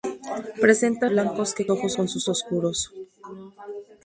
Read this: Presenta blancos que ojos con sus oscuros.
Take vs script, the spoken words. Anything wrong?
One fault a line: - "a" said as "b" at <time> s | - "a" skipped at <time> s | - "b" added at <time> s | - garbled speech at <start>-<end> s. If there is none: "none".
none